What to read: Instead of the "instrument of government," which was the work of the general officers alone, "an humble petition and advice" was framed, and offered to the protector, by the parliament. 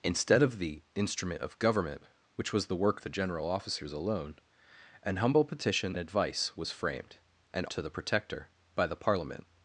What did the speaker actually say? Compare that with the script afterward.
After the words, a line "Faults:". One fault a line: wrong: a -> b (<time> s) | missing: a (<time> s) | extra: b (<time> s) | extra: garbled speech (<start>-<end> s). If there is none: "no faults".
Instead of the "instrument of government," which was the work the general officers alone, "an humble petition advice" was framed, and to the protector, by the parliament.
Faults:
missing: of (3.0 s)
missing: and (6.0 s)
missing: offered (7.6 s)